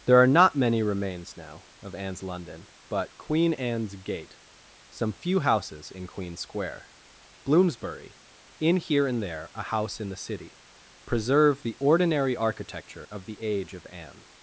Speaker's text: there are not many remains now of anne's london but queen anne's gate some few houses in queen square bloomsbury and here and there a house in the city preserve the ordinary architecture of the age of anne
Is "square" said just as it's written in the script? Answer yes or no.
yes